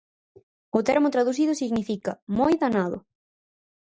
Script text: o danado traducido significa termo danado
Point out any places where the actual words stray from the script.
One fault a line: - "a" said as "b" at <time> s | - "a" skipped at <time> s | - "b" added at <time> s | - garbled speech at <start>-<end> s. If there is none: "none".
- "danado" said as "termo" at 0.9 s
- "termo" said as "moi" at 2.4 s